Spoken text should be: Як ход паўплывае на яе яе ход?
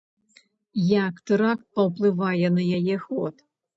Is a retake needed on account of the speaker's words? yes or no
yes